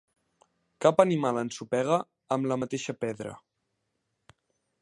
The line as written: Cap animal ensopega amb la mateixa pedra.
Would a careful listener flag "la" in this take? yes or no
no